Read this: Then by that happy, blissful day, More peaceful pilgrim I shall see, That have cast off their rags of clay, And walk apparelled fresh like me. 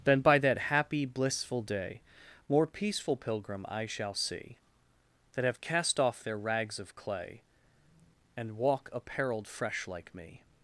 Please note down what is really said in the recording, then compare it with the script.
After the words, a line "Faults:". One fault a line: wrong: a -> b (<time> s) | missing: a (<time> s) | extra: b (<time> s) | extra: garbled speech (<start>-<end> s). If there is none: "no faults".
Then by that happy, blissful day, More peaceful pilgrim I shall see, That have cast off their rags of clay, And walk apparelled fresh like me.
Faults:
no faults